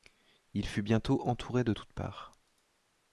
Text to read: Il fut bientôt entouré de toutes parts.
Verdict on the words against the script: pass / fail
pass